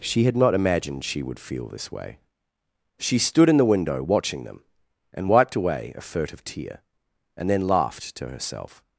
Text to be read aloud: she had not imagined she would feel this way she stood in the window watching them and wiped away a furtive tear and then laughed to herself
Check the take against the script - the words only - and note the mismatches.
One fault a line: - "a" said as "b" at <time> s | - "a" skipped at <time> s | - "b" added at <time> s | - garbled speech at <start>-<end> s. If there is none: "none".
none